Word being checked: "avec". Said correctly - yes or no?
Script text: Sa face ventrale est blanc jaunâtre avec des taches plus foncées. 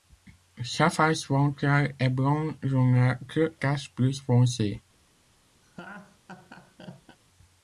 no